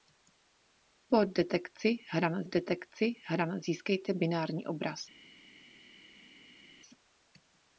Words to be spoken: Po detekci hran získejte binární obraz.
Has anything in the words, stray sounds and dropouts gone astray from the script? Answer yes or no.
yes